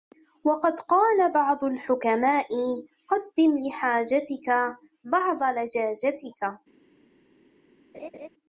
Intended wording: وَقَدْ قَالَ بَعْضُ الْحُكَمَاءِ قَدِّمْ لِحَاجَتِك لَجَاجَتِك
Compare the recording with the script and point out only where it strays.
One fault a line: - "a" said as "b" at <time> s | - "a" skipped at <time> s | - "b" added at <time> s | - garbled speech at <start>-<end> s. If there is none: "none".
- "بَعْضَ" added at 5.0 s